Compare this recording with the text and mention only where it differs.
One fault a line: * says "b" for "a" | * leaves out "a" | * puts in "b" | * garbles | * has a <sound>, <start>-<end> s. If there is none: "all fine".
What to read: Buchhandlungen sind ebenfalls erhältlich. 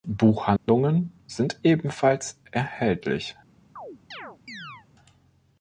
* has a dropout, 0.6-0.7 s
* has a chirp, 3.8-4.9 s